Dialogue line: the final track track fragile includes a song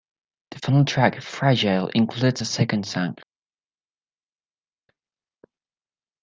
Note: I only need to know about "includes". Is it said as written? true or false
true